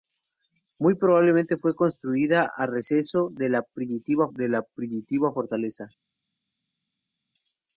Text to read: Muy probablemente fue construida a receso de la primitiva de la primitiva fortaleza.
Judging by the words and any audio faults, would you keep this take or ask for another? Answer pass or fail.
pass